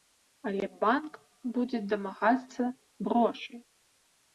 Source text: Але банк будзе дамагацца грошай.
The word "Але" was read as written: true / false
true